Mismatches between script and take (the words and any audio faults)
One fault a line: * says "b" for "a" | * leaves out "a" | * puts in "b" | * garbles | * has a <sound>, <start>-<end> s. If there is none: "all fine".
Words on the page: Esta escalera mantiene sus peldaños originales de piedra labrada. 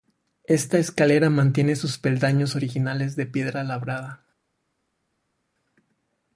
all fine